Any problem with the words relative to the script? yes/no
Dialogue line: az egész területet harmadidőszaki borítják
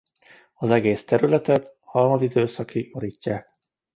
no